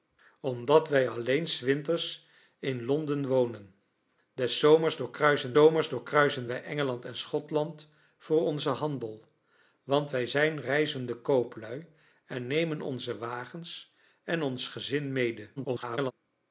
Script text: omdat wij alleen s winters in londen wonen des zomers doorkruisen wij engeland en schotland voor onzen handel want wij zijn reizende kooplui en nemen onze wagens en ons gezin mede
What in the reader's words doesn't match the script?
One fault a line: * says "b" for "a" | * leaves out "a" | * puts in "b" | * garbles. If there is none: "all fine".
* puts in "zomers doorkruisen"
* garbles